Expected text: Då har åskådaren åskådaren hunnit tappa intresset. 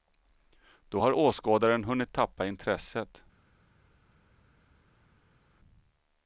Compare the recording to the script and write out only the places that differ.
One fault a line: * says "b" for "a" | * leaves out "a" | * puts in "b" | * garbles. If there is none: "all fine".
* leaves out "åskådaren"